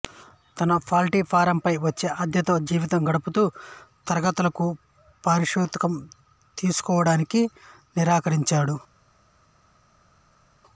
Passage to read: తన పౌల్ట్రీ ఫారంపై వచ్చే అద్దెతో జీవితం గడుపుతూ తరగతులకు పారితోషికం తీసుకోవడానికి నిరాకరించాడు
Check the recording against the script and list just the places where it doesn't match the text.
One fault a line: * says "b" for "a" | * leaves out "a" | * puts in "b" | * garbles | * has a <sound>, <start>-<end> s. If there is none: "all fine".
all fine